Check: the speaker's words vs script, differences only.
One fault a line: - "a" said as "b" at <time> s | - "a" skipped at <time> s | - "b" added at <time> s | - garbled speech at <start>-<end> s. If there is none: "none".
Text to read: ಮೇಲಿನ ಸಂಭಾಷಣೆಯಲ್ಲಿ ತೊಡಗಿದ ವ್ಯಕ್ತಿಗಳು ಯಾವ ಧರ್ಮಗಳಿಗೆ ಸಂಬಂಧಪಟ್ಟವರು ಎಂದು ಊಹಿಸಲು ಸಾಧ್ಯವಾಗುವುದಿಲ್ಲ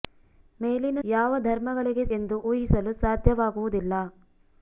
- "ಸಂಭಾಷಣೆಯಲ್ಲಿ ತೊಡಗಿದ ವ್ಯಕ್ತಿಗಳು" skipped at 1.0 s
- "ಸಂಬಂಧಪಟ್ಟವರು" skipped at 2.0 s